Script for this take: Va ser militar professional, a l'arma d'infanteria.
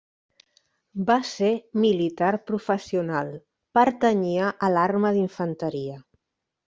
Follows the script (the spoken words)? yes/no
no